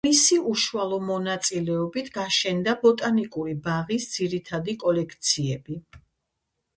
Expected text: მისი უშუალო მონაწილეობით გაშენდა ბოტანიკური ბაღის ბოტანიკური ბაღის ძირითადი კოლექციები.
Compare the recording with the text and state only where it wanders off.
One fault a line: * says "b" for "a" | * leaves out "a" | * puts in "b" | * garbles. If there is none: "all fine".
* leaves out "ბოტანიკური ბაღის"